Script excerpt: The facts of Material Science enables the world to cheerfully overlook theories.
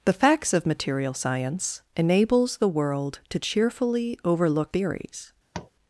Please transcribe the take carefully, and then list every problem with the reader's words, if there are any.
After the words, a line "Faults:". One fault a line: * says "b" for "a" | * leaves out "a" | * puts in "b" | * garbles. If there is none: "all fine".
The facts of Material Science enables the world to cheerfully overlook theories.
Faults:
all fine